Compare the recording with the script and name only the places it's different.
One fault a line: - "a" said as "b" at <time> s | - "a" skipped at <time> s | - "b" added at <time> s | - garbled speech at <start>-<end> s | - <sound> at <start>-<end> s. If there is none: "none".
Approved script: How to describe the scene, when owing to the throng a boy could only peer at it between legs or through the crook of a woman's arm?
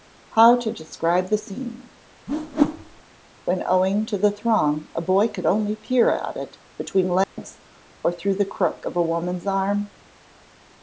- whoosh at 2.3-3.0 s
- dropout at 7.2-7.4 s